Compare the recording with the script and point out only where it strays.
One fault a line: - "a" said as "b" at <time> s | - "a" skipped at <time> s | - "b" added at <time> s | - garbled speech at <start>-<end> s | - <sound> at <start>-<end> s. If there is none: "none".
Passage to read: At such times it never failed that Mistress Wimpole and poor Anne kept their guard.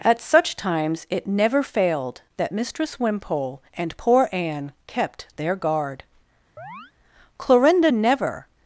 - chirp at 6.6-6.9 s
- "Clorinda never" added at 7.4 s